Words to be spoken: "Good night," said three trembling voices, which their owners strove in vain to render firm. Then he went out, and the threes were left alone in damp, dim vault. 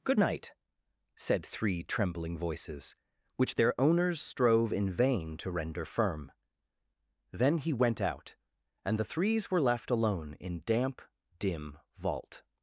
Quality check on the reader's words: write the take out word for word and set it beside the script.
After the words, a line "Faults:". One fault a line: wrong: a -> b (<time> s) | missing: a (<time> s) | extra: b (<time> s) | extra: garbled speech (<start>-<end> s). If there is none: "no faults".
"Good night," said three trembling voices, which their owners strove in vain to render firm. Then he went out, and the threes were left alone in damp, dim vault.
Faults:
no faults